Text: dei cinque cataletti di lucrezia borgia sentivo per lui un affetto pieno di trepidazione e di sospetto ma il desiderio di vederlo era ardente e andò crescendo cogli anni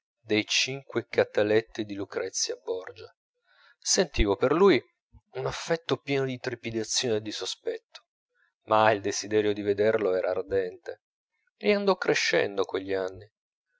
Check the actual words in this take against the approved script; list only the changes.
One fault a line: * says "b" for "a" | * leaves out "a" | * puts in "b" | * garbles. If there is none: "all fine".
all fine